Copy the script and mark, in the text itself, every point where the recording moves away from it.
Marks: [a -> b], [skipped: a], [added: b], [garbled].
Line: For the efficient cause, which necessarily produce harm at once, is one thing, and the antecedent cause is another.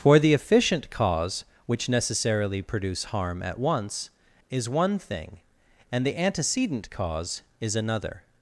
For the efficient cause, which necessarily produce harm at once, is one thing, and the antecedent cause is another.